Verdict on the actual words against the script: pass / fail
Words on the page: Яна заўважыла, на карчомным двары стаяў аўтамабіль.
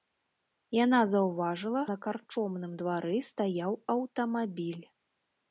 pass